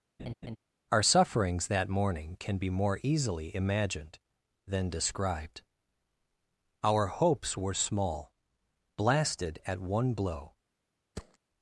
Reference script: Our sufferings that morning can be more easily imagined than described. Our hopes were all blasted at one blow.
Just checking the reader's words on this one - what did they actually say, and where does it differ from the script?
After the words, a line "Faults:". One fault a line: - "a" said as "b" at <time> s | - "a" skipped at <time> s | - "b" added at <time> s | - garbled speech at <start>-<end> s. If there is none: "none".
Our sufferings that morning can be more easily imagined than described. Our hopes were small blasted at one blow.
Faults:
- "all" said as "small" at 7.7 s